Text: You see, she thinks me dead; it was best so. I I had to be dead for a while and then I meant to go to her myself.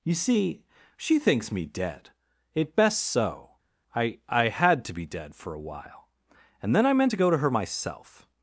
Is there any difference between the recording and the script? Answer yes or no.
yes